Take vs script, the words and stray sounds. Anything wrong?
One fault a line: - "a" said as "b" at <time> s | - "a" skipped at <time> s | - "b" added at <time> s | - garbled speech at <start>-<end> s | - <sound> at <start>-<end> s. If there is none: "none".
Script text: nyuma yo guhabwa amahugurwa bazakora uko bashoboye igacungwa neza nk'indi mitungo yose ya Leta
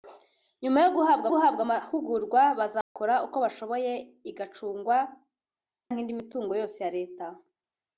- "guhabwa" added at 1.3 s
- dropout at 2.8-3.0 s
- "neza" skipped at 5.0 s